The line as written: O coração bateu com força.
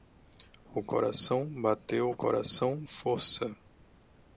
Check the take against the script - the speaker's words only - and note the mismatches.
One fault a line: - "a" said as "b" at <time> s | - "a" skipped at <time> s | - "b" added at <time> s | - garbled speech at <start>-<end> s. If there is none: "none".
- "com" said as "coração" at 2.1 s